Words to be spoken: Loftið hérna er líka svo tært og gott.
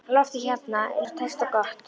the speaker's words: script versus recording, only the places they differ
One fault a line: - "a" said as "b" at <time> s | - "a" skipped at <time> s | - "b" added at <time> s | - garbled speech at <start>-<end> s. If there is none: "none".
- "líka" skipped at 1.1 s